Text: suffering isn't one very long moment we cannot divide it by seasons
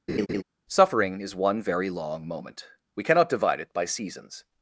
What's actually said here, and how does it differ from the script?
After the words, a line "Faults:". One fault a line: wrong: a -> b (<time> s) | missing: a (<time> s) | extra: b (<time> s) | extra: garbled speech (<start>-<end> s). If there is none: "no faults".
suffering is one very long moment we cannot divide it by seasons
Faults:
wrong: isn't -> is (1.2 s)